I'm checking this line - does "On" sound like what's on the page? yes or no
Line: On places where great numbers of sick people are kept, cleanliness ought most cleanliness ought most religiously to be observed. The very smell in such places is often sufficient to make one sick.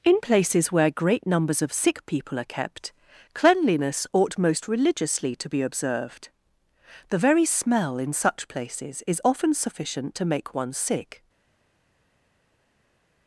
no